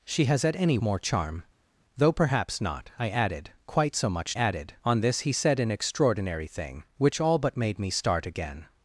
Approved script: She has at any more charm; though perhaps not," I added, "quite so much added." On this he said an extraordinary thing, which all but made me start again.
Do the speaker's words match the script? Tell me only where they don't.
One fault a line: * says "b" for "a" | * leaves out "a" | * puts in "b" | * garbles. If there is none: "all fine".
all fine